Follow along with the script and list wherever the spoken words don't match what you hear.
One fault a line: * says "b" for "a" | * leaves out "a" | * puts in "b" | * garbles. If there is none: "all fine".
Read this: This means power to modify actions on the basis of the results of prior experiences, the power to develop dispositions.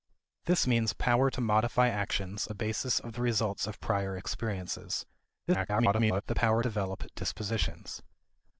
* leaves out "on"
* garbles
* leaves out "to"